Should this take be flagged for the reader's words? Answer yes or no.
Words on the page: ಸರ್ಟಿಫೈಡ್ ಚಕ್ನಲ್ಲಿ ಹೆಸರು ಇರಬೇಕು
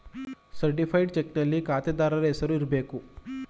yes